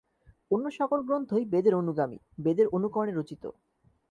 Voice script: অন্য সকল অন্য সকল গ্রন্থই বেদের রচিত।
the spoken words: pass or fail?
fail